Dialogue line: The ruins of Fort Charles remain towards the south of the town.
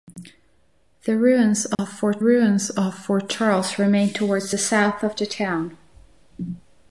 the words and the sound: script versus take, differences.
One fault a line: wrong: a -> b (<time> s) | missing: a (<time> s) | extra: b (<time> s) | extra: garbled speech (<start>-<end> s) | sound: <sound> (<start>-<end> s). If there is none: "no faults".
sound: dropout (1.7-1.8 s)
extra: ruins of Fort (2.2 s)